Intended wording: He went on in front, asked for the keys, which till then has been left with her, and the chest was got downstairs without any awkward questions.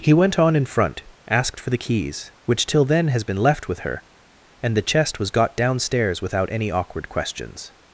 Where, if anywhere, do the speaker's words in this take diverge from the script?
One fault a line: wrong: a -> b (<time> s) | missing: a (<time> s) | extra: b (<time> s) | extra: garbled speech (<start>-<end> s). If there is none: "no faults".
no faults